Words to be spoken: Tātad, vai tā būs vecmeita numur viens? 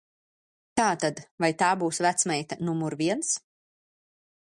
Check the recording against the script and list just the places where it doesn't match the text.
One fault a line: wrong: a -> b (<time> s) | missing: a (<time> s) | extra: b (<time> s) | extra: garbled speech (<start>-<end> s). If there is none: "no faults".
no faults